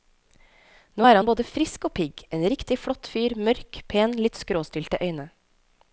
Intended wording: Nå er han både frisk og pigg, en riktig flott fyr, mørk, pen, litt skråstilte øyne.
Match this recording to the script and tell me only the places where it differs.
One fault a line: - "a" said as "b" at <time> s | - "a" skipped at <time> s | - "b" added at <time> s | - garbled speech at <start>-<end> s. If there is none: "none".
none